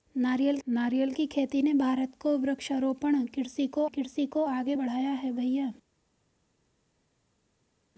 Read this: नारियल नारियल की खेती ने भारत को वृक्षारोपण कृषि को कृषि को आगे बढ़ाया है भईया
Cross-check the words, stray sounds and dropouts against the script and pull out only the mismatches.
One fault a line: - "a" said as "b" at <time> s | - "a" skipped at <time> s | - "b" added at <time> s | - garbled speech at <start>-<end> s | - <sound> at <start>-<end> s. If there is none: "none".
none